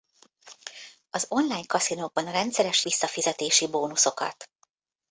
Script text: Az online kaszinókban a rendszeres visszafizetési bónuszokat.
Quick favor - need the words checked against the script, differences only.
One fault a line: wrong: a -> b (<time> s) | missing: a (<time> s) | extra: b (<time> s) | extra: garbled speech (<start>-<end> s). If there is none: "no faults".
no faults